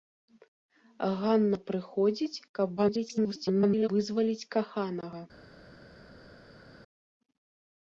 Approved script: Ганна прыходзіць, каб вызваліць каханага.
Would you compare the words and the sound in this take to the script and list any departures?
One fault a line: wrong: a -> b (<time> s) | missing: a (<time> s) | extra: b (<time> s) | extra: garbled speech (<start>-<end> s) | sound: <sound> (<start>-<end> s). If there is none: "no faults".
extra: garbled speech (2.8-3.9 s)